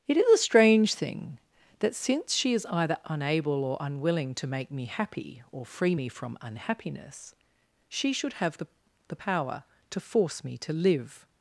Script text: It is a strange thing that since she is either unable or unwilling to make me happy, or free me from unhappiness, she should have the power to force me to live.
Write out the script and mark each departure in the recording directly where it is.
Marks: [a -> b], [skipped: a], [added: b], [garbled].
It is a strange thing that since she is either unable or unwilling to make me happy, or free me from unhappiness, she should have the [added: the] power to force me to live.